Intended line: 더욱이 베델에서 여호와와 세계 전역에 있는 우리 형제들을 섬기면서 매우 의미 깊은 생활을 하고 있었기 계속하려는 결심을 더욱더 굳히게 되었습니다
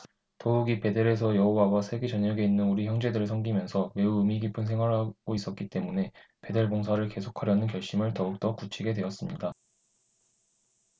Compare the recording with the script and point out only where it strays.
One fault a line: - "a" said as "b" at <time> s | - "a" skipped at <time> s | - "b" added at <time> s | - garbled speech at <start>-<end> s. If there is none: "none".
- "때문에 베델 봉사를" added at 5.7 s